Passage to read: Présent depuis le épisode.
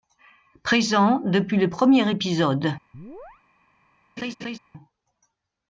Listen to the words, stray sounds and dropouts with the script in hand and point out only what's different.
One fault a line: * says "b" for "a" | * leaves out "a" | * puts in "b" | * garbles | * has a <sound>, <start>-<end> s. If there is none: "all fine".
* puts in "premier"
* has a chirp, 2.9-3.4 s
* has a laugh, 4.2-4.6 s